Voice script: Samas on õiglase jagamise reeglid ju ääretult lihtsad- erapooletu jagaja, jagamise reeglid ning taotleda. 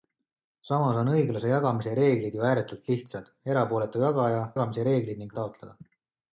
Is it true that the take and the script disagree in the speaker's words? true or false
false